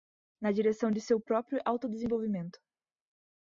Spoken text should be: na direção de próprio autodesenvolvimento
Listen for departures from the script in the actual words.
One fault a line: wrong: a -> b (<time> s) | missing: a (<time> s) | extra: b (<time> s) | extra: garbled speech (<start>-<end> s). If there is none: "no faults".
extra: seu (1.0 s)